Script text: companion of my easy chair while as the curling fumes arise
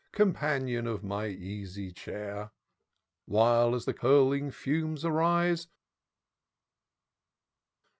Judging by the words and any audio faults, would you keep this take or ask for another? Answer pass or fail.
pass